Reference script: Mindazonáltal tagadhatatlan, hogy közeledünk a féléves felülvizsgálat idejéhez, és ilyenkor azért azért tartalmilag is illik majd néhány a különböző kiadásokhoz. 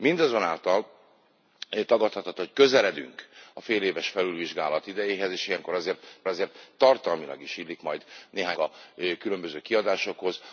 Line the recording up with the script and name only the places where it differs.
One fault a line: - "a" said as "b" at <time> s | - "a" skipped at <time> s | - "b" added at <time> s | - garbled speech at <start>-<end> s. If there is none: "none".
none